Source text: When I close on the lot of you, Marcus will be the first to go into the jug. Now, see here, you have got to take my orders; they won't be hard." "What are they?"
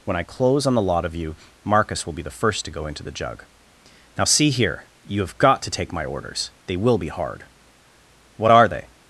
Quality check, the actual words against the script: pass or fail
fail